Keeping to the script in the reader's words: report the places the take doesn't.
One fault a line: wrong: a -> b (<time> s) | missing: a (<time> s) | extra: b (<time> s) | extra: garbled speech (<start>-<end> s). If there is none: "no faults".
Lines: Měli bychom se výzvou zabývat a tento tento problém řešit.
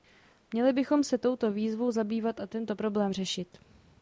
extra: touto (1.2 s)
missing: tento (2.8 s)